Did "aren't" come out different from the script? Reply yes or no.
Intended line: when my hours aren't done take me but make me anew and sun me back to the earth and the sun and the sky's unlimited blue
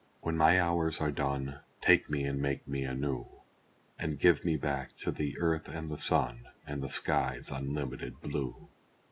yes